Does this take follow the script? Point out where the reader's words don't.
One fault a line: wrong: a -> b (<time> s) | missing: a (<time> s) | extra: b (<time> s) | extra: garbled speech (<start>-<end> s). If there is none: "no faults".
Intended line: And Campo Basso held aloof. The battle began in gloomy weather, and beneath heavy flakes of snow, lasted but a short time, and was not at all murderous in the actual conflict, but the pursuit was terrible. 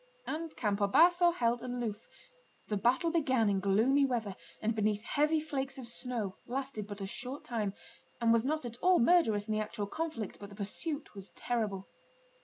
no faults